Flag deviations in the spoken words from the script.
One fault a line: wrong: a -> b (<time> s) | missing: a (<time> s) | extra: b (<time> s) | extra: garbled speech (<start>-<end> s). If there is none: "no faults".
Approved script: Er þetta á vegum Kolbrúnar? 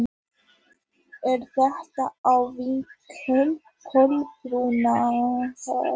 no faults